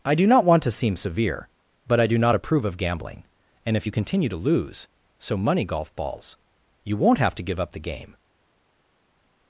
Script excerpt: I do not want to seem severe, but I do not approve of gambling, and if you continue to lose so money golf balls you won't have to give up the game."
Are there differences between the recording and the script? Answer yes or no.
no